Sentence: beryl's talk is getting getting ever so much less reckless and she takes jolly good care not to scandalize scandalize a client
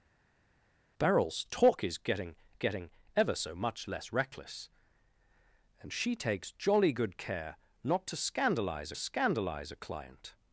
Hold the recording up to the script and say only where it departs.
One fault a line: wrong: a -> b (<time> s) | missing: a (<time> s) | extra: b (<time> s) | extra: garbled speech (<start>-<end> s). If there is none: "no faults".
no faults